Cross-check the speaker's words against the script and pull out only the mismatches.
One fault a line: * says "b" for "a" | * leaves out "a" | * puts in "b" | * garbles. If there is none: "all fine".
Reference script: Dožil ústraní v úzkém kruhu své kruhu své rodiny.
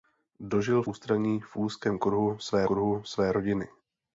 all fine